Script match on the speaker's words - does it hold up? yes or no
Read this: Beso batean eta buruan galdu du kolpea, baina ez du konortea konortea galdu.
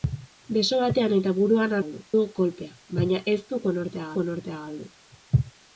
yes